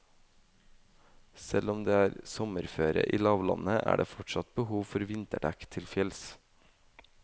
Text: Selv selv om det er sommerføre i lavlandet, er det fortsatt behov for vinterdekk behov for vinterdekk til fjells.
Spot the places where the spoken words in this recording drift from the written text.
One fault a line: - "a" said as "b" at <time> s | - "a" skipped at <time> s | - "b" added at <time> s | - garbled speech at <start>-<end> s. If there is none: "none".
- "selv" skipped at 1.7 s
- "behov for vinterdekk" skipped at 5.7 s